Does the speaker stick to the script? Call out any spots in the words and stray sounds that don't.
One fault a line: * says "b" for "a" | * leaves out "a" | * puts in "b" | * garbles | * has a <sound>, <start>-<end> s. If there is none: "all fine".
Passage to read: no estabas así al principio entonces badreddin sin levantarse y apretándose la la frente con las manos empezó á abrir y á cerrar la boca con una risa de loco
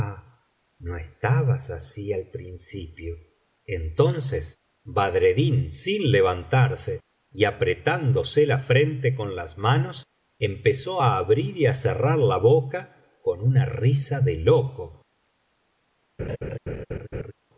* leaves out "la"
* has a laugh, 16.2-17.3 s